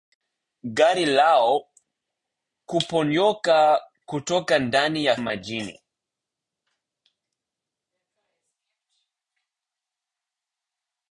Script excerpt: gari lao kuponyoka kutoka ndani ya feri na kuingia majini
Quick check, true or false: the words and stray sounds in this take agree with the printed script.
false